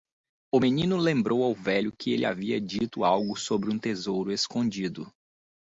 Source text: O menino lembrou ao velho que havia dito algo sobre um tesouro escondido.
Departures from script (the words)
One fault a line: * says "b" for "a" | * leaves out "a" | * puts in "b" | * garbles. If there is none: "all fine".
* puts in "ele"